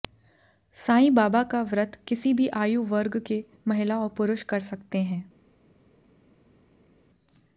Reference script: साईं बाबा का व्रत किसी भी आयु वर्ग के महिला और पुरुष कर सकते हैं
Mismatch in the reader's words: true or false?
false